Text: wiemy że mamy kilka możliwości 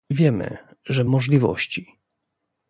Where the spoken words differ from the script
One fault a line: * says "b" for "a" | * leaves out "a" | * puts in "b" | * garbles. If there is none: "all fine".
* leaves out "mamy kilka"